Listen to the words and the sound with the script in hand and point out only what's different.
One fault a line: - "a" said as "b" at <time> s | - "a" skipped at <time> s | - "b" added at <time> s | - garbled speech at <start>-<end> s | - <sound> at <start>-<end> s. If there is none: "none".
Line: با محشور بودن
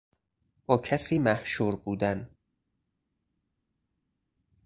- "کسی" added at 0.8 s